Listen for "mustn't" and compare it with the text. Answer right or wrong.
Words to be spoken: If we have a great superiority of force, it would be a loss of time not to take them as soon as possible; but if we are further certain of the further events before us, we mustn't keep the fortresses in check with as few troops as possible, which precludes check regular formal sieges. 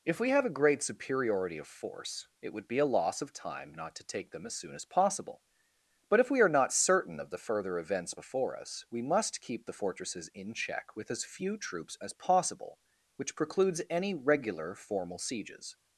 wrong